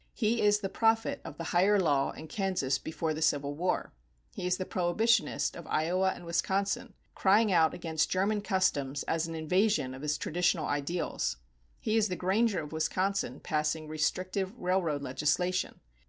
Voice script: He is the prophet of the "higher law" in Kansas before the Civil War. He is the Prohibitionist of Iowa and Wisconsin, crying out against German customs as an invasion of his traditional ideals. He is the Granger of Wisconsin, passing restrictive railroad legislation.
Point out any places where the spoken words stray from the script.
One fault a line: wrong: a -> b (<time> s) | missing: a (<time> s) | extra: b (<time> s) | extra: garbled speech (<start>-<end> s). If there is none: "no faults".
no faults